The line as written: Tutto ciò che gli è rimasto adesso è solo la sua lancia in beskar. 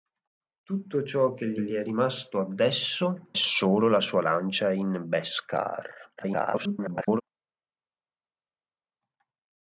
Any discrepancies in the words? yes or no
yes